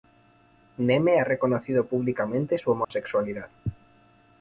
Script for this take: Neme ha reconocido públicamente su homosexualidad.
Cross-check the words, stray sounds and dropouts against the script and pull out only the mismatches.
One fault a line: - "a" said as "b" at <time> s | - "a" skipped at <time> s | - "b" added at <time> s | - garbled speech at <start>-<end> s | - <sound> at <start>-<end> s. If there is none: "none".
- dropout at 2.8-2.9 s